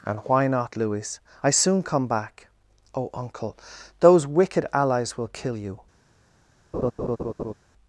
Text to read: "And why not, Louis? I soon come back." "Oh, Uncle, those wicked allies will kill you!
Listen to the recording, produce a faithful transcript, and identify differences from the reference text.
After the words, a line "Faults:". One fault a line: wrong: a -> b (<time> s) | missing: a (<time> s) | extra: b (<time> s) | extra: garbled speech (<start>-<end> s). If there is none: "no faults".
"And why not, Louis? I soon come back." "Oh, Uncle, those wicked allies will kill you!
Faults:
no faults